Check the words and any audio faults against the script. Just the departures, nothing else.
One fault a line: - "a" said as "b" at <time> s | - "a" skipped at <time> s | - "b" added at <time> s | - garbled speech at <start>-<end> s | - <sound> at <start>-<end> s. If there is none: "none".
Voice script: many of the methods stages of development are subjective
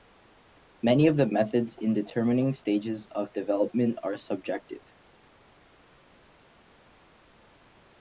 - "in determining" added at 1.8 s